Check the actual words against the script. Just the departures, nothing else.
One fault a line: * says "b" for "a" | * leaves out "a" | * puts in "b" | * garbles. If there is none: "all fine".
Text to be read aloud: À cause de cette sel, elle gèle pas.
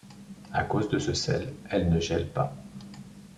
* says "ce" for "cette"
* puts in "ne"